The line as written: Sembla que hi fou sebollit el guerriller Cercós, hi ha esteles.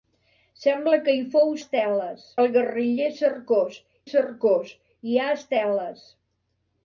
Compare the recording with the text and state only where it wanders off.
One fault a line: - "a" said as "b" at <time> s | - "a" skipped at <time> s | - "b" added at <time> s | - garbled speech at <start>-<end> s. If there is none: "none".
- "sebollit" said as "esteles" at 1.6 s
- "Cercós" added at 4.1 s